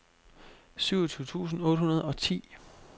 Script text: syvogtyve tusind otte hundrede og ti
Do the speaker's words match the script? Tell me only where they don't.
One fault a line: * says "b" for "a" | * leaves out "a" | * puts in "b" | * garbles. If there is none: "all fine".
all fine